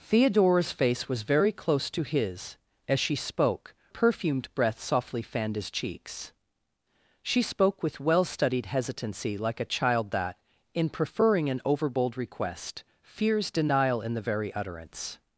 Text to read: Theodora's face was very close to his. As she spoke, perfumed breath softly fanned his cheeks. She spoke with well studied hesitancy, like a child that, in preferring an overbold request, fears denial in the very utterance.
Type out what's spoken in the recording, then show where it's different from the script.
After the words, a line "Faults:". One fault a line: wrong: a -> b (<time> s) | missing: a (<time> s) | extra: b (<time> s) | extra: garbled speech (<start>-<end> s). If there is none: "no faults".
Theodora's face was very close to his. As she spoke, perfumed breath softly fanned his cheeks. She spoke with well studied hesitancy, like a child that, in preferring an overbold request, fears denial in the very utterance.
Faults:
no faults